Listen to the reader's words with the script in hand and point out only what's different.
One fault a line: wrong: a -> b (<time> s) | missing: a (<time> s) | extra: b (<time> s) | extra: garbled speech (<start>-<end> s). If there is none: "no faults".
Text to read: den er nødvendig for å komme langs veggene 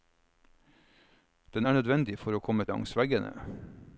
no faults